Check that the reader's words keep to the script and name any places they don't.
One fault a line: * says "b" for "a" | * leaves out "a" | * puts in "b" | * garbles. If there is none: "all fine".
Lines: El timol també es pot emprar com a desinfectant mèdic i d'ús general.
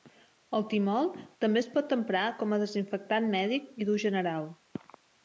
all fine